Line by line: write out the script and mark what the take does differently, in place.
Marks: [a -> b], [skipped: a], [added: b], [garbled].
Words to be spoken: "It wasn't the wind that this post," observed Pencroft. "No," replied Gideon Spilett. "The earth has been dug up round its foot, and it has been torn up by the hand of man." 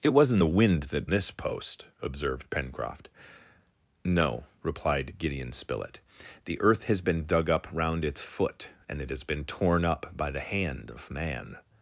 "It wasn't the wind that this post," observed Pencroft. "No," replied Gideon Spilett. "The earth has been dug up round its foot, and it has been torn up by the hand of man."